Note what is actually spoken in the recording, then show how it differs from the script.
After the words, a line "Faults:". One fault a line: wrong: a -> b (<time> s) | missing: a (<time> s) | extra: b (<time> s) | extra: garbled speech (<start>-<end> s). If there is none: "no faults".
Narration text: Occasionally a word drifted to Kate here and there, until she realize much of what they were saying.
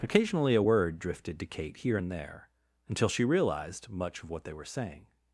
Occasionally a word drifted to Kate here and there, until she realized much of what they were saying.
Faults:
wrong: realize -> realized (3.2 s)